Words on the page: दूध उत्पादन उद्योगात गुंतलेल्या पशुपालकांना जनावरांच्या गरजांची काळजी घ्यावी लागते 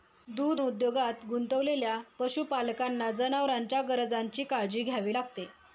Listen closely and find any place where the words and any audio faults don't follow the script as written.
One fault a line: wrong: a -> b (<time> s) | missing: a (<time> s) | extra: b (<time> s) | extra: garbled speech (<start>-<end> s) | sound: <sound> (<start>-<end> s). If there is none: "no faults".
missing: उत्पादन (0.6 s)